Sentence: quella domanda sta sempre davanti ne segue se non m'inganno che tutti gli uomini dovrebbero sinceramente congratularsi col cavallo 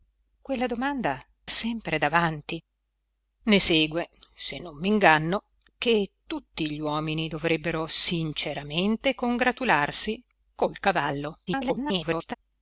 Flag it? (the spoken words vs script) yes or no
yes